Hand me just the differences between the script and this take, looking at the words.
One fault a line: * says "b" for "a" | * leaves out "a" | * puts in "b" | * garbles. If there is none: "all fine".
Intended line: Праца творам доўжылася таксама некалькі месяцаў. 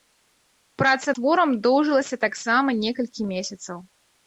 all fine